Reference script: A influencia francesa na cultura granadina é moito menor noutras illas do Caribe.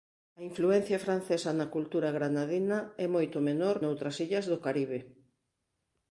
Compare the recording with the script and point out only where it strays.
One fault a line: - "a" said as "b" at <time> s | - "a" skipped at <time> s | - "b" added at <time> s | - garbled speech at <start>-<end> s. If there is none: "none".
none